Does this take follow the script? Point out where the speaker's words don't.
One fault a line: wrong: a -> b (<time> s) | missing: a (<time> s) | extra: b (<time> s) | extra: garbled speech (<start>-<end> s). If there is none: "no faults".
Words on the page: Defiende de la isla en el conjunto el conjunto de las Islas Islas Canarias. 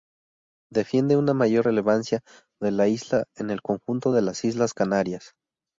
extra: una mayor relevancia (1.1 s)
missing: el conjunto (4.1 s)
missing: Islas (4.7 s)